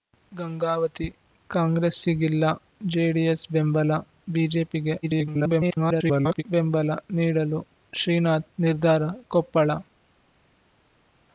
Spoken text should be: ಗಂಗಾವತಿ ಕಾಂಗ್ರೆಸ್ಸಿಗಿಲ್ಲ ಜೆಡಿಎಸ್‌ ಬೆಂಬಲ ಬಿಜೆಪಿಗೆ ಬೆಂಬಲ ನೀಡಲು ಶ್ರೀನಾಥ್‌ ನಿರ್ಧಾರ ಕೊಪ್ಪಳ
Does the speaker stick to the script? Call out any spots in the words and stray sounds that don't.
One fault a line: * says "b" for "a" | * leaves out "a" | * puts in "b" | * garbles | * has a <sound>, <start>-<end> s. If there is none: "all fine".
* garbles